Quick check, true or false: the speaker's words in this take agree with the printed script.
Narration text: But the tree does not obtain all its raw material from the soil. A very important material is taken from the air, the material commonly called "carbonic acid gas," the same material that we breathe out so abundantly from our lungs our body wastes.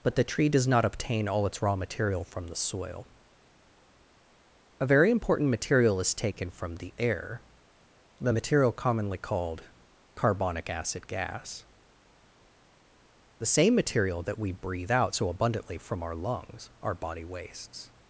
true